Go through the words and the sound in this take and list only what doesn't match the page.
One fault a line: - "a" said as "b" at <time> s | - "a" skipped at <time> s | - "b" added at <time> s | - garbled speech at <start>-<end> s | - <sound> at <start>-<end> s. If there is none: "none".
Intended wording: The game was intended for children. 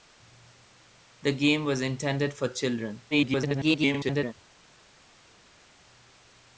- garbled speech at 3.1-4.3 s